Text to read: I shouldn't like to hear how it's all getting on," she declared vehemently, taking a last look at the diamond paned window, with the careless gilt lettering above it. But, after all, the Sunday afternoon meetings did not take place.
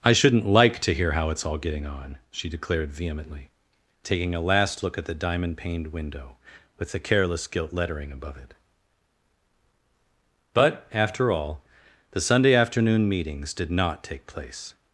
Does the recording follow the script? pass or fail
pass